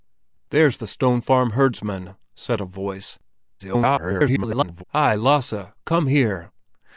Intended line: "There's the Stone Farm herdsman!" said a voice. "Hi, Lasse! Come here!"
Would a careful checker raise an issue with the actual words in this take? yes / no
yes